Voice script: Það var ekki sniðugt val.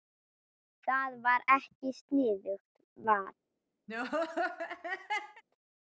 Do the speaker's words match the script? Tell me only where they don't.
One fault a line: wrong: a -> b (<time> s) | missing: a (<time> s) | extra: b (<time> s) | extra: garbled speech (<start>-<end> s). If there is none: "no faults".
no faults